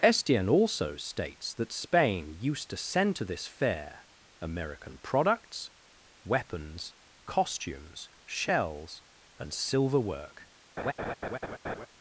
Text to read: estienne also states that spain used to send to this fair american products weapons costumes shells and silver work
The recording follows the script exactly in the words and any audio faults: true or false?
false